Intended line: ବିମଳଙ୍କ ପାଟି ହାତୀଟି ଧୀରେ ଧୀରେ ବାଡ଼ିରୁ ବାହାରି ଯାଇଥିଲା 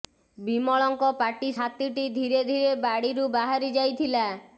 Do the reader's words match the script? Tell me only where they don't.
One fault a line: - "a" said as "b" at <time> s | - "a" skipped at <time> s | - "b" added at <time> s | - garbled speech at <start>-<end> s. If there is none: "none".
none